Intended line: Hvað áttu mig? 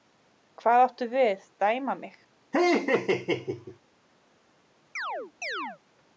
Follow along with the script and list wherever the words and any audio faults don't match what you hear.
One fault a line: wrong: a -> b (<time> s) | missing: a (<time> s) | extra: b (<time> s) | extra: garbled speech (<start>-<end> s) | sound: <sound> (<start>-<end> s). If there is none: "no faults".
extra: við dæma (1.1 s)
sound: laugh (2.5-3.8 s)
sound: chirp (5.0-5.8 s)